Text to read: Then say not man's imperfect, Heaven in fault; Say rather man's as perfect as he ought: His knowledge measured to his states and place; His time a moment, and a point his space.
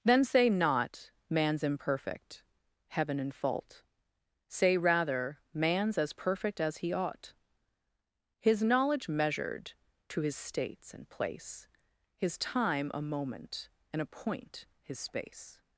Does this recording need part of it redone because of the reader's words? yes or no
no